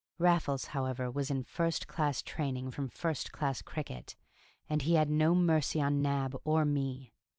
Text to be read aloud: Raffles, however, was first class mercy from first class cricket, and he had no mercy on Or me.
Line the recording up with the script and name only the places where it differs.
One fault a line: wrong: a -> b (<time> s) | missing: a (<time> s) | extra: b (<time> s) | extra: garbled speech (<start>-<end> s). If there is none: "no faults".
extra: in (1.3 s)
wrong: mercy -> training (2.2 s)
extra: Nab (6.0 s)